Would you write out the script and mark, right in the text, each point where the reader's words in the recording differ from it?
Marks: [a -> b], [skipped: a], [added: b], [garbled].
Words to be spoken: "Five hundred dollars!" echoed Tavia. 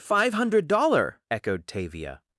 "Five hundred [dollars!" -> dollar] echoed Tavia.